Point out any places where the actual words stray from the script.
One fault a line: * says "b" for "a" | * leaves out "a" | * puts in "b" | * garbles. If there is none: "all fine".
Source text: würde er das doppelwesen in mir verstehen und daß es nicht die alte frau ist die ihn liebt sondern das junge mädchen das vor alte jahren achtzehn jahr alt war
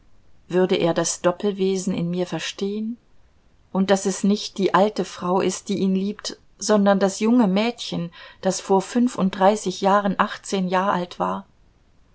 * says "fünfunddreißig" for "alte"